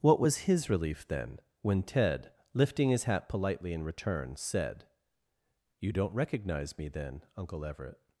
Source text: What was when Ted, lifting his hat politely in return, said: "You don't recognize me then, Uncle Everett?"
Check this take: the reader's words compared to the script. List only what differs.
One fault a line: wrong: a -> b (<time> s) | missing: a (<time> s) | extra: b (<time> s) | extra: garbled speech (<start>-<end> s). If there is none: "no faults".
extra: his relief then (0.5 s)